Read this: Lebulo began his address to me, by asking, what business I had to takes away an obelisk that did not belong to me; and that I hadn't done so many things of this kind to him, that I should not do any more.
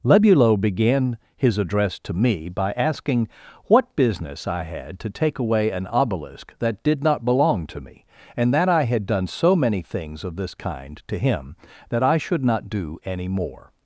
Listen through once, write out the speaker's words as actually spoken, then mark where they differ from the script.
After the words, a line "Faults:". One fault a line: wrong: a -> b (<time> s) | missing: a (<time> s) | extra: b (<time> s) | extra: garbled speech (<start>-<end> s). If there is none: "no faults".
Lebulo began his address to me, by asking, what business I had to take away an obelisk that did not belong to me; and that I had done so many things of this kind to him, that I should not do any more.
Faults:
wrong: takes -> take (5.1 s)
wrong: hadn't -> had (8.8 s)